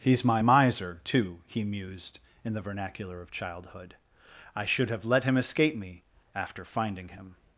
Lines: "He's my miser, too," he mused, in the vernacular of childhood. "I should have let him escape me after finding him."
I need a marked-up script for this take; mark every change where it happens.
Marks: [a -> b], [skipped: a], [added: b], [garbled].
"He's my miser, too," he mused, in the vernacular of childhood. "I should have let him escape me after finding him."